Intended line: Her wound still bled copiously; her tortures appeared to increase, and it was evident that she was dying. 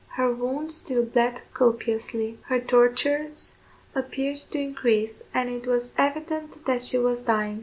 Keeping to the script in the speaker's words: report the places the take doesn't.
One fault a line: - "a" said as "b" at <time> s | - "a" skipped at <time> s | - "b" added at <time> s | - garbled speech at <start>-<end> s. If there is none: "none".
none